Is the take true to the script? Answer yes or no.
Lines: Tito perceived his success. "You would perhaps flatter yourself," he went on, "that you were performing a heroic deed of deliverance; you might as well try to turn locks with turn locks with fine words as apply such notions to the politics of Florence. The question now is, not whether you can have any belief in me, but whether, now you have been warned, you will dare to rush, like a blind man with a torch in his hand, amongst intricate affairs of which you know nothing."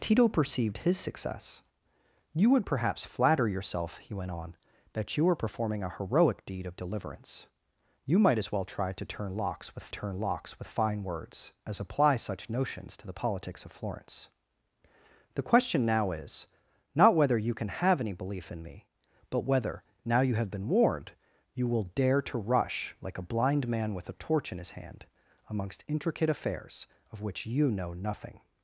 yes